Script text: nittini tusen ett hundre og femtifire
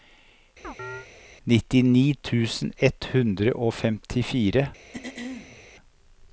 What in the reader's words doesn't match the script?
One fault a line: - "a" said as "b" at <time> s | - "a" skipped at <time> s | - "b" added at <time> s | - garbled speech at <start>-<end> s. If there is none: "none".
none